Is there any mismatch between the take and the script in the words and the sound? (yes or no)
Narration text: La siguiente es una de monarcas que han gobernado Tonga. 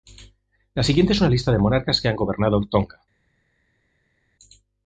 yes